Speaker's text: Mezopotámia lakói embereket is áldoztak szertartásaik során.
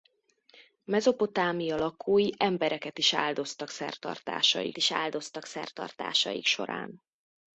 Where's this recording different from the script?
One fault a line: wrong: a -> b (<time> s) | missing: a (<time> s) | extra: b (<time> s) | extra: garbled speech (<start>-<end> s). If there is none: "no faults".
extra: is áldoztak szertartásaik (4.8 s)